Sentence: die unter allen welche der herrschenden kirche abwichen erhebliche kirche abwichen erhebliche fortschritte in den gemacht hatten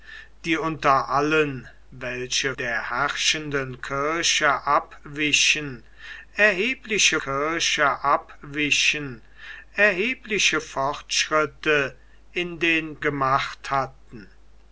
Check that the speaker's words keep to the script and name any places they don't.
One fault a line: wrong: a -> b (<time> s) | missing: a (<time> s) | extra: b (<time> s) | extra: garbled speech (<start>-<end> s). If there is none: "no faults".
no faults